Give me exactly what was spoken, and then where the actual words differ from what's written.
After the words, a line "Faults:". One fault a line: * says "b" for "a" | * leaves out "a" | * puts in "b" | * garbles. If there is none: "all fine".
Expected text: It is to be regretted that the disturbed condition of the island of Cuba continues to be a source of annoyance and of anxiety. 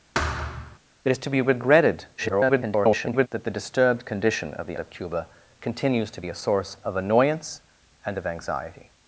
It is to be regretted [garbled] that the disturbed condition of the of Cuba continues to be a source of annoyance and of anxiety.
Faults:
* garbles
* leaves out "island"